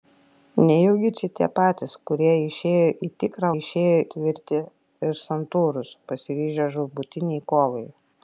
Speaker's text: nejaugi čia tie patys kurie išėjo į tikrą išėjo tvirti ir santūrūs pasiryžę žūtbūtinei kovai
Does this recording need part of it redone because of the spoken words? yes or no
no